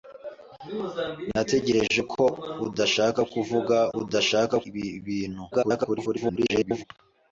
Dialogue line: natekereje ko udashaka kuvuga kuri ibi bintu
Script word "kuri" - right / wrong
wrong